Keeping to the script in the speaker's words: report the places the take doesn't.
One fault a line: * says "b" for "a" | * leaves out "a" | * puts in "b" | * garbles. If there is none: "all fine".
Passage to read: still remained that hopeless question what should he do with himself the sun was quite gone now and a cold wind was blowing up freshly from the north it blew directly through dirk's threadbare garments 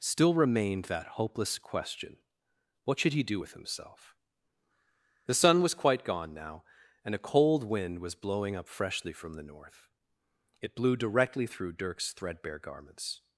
all fine